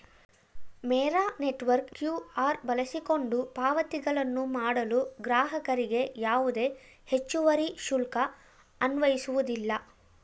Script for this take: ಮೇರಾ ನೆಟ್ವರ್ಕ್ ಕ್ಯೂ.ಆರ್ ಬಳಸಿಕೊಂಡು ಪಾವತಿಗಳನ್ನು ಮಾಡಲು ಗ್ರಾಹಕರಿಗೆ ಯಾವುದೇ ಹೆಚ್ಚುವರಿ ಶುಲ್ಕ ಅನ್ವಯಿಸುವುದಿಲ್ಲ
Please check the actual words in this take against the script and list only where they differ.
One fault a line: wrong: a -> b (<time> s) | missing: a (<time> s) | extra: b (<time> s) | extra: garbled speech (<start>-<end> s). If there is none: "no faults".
no faults